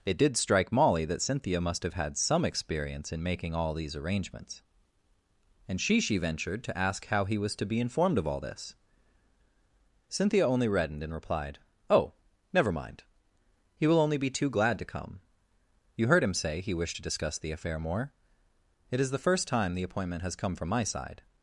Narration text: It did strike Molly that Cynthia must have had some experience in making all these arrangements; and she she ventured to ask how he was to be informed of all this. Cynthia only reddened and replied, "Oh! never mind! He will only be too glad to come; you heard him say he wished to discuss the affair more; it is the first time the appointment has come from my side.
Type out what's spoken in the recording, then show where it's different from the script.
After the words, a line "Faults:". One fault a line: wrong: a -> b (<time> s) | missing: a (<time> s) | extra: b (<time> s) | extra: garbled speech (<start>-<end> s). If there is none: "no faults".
It did strike Molly that Cynthia must have had some experience in making all these arrangements; and she she ventured to ask how he was to be informed of all this. Cynthia only reddened and replied, "Oh! never mind! He will only be too glad to come; you heard him say he wished to discuss the affair more; it is the first time the appointment has come from my side.
Faults:
no faults